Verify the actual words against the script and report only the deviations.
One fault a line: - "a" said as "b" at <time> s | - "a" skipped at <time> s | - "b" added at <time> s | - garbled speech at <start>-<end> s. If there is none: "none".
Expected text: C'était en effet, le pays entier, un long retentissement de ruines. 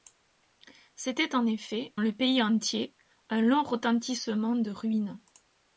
none